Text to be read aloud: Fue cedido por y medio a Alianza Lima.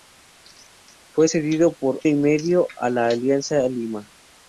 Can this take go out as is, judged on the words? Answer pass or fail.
pass